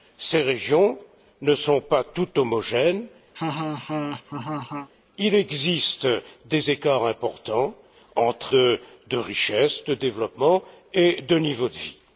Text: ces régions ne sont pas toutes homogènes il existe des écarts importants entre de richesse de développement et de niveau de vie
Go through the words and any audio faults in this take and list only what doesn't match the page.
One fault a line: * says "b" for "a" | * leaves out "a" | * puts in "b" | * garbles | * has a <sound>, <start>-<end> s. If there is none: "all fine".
* has a laugh, 3.3-4.9 s